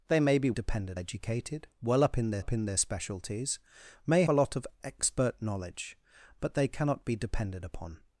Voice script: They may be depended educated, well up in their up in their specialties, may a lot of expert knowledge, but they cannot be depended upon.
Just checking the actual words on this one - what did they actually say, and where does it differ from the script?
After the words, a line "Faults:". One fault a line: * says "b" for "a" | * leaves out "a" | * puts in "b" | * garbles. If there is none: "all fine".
They may be depended educated, well up in their up in their specialties, may a lot of expert knowledge, but they cannot be depended upon.
Faults:
all fine